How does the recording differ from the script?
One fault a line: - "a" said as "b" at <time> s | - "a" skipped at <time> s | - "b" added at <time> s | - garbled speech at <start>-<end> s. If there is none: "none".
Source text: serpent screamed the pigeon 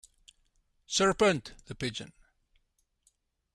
- "screamed" skipped at 1.5 s